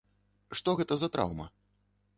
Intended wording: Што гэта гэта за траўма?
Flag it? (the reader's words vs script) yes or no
yes